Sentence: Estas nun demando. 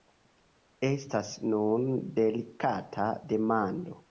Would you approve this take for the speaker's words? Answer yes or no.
no